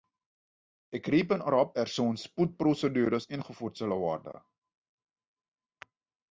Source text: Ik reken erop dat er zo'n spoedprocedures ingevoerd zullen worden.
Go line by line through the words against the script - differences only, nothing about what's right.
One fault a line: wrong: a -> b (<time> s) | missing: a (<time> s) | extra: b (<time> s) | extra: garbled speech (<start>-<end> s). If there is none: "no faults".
missing: dat (1.7 s)